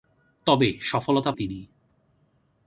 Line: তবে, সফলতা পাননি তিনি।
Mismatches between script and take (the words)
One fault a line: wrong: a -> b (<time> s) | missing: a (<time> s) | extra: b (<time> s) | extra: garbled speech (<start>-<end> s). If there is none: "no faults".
missing: পাননি (1.3 s)